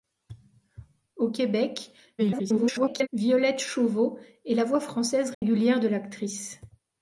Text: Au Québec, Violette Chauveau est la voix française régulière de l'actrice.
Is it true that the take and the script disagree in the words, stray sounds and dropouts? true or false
true